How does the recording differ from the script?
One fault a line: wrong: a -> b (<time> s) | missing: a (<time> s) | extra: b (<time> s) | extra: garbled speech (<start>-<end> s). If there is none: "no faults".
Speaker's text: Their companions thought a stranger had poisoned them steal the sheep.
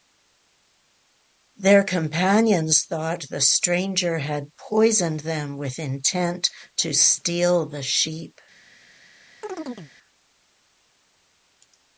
wrong: a -> the (3.3 s)
extra: with intent to (5.6 s)